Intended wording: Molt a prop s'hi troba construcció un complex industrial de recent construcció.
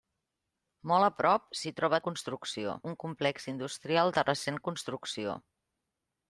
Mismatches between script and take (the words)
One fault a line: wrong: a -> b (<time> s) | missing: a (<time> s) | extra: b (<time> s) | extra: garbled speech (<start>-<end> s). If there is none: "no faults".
no faults